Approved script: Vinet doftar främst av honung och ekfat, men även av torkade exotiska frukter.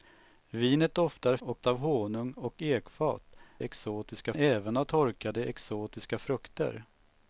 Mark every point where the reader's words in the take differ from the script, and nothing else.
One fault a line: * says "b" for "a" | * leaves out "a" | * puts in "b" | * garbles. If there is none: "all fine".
* says "och" for "främst"
* says "exotiska" for "men"